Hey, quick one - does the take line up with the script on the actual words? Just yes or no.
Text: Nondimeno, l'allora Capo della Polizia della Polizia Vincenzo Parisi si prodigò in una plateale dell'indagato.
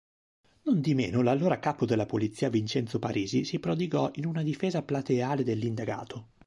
no